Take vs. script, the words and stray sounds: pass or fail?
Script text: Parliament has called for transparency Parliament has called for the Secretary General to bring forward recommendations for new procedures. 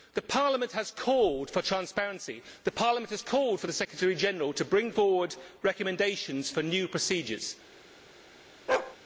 fail